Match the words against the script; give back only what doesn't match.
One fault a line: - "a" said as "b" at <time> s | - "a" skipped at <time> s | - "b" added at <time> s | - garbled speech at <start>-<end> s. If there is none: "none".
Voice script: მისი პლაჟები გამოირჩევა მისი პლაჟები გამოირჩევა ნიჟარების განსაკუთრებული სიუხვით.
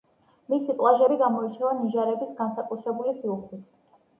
- "მისი პლაჟები გამოირჩევა" skipped at 1.7 s